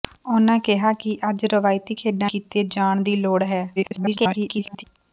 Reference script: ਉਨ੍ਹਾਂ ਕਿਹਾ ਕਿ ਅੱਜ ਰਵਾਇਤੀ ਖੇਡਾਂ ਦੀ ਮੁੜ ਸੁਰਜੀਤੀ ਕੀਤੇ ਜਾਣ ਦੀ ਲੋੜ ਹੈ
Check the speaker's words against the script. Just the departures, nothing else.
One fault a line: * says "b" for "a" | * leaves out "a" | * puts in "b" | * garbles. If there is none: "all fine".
* leaves out "ਦੀ ਮੁੜ ਸੁਰਜੀਤੀ"
* garbles